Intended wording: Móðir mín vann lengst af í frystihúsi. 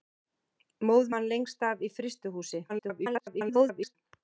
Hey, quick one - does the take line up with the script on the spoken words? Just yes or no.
no